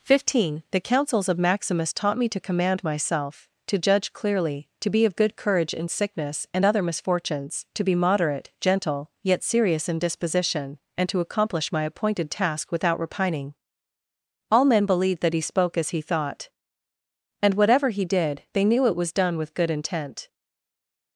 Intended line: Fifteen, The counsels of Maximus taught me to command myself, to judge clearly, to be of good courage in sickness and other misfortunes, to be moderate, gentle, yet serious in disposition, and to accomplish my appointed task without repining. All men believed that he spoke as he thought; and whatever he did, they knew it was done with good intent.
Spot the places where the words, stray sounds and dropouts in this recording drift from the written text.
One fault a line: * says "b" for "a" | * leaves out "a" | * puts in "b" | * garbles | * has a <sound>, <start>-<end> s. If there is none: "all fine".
all fine